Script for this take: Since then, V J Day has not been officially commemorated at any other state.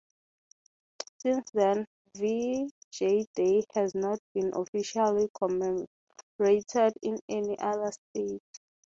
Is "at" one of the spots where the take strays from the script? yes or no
yes